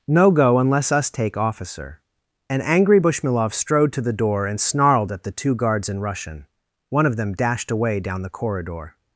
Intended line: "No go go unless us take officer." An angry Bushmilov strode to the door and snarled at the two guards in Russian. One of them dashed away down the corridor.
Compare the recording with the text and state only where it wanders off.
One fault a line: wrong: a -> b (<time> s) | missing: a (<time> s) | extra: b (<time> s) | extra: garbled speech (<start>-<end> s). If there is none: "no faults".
missing: go (0.6 s)